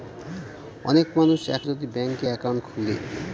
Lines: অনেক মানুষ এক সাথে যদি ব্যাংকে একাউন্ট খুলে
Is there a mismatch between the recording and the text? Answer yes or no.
yes